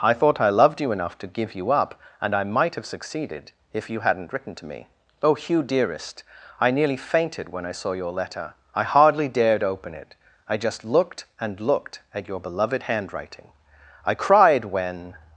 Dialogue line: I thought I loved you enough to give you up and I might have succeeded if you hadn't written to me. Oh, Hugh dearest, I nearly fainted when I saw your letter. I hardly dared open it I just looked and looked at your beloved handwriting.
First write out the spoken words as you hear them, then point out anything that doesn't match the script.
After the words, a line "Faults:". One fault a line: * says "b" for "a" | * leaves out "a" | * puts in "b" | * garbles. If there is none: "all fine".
I thought I loved you enough to give you up and I might have succeeded if you hadn't written to me. Oh, Hugh dearest, I nearly fainted when I saw your letter. I hardly dared open it I just looked and looked at your beloved handwriting. I cried when
Faults:
* puts in "I cried when"